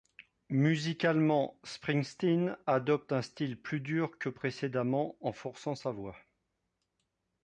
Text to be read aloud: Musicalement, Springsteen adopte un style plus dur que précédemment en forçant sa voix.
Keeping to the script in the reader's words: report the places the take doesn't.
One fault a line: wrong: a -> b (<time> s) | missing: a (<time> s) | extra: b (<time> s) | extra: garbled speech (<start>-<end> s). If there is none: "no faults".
no faults